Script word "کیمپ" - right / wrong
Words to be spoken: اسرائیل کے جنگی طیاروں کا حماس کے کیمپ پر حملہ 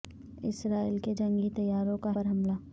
wrong